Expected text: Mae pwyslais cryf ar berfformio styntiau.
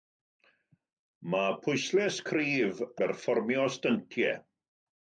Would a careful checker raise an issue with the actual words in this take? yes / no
yes